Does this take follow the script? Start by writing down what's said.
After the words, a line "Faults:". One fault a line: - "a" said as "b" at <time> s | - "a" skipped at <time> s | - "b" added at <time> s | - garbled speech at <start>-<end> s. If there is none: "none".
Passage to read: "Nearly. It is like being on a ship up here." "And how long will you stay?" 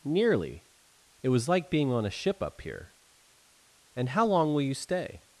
"Nearly. It was like being on a ship up here." "And how long will you stay?"
Faults:
- "is" said as "was" at 1.3 s